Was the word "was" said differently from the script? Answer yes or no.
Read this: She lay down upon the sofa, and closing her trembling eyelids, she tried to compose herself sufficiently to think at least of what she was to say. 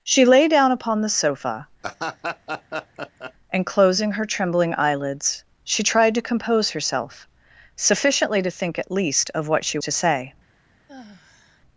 yes